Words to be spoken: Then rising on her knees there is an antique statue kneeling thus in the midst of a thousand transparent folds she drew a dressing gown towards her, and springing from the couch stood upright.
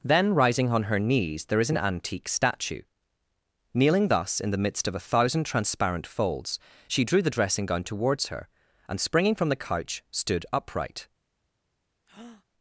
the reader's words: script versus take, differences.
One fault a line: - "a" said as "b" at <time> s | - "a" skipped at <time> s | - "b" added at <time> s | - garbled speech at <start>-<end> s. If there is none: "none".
- "a" said as "the" at 7.2 s